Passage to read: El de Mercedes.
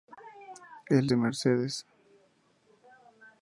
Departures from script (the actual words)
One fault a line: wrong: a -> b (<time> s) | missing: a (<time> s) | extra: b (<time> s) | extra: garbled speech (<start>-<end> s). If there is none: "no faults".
no faults